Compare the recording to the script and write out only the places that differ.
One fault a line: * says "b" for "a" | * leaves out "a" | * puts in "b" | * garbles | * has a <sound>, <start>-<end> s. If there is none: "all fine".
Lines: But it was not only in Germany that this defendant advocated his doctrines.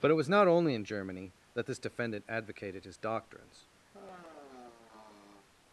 * has a sigh, 3.9-5.5 s